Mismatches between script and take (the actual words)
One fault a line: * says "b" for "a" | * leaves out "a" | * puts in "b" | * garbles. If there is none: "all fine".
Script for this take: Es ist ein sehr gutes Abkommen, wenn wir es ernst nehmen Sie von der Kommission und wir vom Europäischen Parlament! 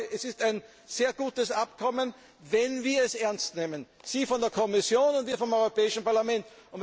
all fine